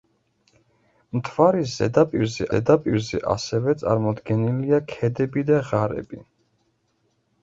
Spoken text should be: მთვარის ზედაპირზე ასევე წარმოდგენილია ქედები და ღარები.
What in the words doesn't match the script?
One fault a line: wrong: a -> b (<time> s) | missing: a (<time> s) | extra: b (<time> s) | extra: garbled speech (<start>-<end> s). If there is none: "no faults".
extra: ზედაპირზე (2.5 s)